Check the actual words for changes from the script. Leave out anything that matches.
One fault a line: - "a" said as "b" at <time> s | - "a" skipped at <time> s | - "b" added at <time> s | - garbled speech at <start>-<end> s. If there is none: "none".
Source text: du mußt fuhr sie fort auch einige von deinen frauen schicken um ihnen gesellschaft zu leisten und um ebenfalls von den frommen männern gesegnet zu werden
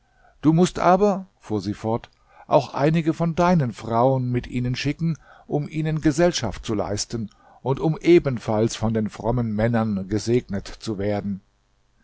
- "aber" added at 0.8 s
- "mit ihnen" added at 4.3 s